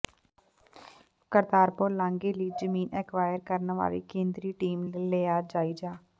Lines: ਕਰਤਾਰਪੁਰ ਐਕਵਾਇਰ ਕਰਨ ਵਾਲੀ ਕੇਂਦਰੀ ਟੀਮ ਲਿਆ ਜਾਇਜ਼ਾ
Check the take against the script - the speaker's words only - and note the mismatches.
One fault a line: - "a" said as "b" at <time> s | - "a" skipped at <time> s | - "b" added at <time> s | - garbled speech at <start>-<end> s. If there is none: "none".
- "ਲਾਂਘੇ ਲਈ ਜ਼ਮੀਨ" added at 1.9 s
- "ਨੇ" added at 4.8 s